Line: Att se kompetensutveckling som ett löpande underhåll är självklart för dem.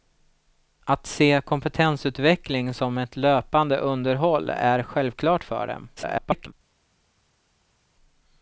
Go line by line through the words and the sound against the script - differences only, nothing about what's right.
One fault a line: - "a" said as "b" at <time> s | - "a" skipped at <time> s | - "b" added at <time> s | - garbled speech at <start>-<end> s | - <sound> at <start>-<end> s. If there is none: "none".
- garbled speech at 6.0-6.5 s